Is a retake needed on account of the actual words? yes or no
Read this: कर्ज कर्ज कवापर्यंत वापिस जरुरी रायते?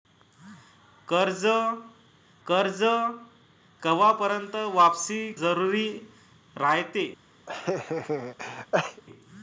no